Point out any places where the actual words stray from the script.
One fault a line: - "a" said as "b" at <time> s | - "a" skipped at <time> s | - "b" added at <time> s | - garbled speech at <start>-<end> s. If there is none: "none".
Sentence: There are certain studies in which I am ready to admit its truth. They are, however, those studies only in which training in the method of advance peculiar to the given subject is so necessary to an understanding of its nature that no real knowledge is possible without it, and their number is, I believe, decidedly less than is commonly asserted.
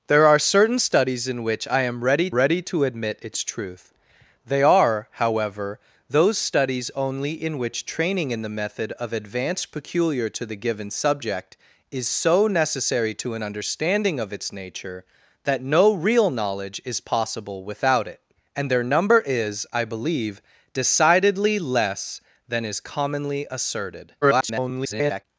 - "ready" added at 2.3 s
- garbled speech at 24.2-25.2 s